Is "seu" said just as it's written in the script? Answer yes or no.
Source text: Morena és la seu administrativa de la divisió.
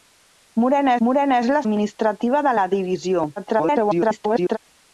no